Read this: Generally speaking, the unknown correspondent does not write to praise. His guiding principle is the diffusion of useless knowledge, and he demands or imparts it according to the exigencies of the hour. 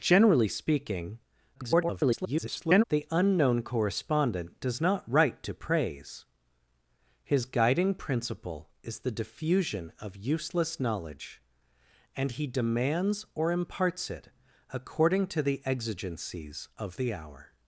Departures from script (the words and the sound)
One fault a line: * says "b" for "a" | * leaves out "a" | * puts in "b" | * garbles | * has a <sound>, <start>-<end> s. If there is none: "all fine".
* garbles